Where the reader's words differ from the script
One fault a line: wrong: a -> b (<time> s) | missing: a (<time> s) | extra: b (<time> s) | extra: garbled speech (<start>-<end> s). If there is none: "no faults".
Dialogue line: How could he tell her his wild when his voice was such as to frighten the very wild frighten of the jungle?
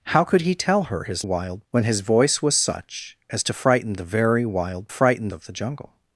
no faults